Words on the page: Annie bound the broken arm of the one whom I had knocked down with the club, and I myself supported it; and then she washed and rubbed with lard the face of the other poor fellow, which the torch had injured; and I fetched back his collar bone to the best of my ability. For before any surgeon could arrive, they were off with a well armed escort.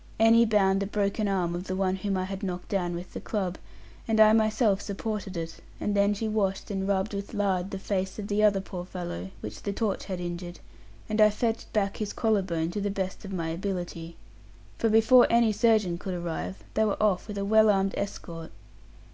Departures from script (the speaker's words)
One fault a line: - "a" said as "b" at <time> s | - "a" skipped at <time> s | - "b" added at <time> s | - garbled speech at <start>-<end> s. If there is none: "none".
none